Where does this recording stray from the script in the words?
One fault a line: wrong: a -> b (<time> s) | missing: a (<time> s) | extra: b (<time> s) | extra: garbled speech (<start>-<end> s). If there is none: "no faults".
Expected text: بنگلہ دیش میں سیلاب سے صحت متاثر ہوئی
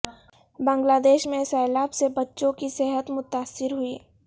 extra: بچوں کی (2.1 s)